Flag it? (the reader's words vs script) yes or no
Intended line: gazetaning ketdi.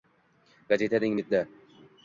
no